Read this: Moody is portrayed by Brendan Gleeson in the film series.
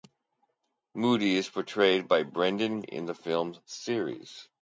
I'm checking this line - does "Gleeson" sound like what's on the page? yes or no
no